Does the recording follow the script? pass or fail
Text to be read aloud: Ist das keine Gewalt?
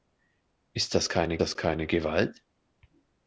fail